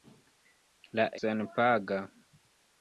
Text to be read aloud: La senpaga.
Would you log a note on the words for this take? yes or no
no